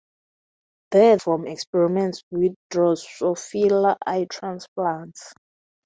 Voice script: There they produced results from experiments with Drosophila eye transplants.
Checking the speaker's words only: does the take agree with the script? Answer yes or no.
no